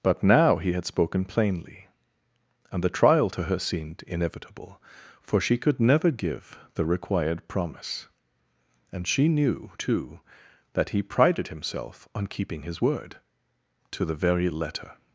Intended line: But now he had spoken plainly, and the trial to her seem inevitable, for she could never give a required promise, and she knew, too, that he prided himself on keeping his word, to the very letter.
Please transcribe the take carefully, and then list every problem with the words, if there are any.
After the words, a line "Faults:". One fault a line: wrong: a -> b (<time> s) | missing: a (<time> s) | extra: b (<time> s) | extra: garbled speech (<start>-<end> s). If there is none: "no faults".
But now he had spoken plainly, and the trial to her seemed inevitable, for she could never give the required promise, and she knew, too, that he prided himself on keeping his word, to the very letter.
Faults:
wrong: seem -> seemed (3.6 s)
wrong: a -> the (6.7 s)